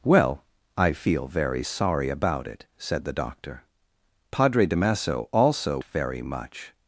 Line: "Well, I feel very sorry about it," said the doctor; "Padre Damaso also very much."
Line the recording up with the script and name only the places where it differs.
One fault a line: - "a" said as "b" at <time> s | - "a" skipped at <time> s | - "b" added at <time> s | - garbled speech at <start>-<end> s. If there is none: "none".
none